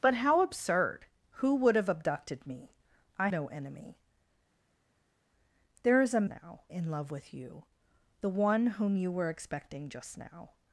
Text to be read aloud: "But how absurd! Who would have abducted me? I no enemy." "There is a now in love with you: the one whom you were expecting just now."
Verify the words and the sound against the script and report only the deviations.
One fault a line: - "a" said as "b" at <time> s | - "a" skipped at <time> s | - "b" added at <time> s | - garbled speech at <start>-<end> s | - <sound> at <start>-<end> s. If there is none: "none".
none